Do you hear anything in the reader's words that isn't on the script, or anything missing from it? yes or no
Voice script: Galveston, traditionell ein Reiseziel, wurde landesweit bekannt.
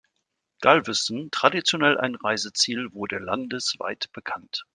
no